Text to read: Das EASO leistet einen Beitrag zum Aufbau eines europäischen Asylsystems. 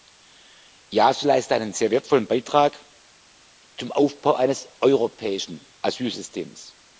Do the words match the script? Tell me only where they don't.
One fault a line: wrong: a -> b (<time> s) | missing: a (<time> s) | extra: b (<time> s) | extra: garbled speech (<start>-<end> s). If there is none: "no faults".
extra: sehr wertvollen (1.7 s)